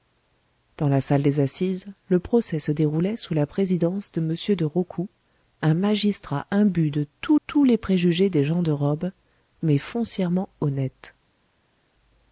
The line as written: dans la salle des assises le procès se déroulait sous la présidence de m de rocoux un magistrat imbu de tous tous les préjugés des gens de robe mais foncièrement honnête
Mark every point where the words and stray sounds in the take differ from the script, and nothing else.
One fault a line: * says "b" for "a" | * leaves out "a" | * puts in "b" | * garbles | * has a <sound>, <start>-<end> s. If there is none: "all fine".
all fine